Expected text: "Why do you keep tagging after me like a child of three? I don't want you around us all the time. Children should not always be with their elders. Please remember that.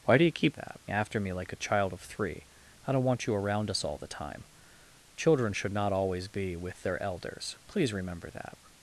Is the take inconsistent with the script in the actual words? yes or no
yes